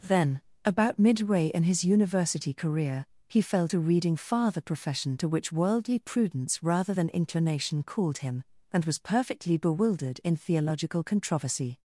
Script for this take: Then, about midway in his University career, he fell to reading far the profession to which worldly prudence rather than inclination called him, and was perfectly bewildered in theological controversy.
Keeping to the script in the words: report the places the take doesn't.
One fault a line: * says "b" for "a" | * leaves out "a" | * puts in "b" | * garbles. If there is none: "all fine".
all fine